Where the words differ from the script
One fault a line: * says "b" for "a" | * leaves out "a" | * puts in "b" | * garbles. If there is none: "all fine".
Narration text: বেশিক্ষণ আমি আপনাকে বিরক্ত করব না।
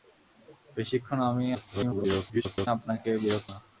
* garbles
* leaves out "করব"